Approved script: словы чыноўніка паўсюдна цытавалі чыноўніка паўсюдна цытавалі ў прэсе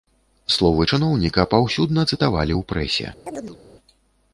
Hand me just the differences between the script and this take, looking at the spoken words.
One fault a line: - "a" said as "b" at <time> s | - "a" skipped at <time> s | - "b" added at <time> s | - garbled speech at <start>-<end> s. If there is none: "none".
- "чыноўніка паўсюдна цытавалі" skipped at 2.5 s